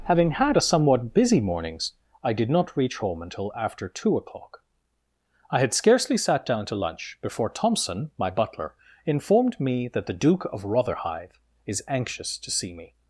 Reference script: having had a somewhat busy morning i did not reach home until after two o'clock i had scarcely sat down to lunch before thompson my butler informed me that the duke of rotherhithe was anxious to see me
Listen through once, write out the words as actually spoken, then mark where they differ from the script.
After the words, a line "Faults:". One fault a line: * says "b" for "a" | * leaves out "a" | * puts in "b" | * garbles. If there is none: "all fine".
having had a somewhat busy mornings i did not reach home until after two o'clock i had scarcely sat down to lunch before thompson my butler informed me that the duke of rotherhithe is anxious to see me
Faults:
* says "mornings" for "morning"
* says "is" for "was"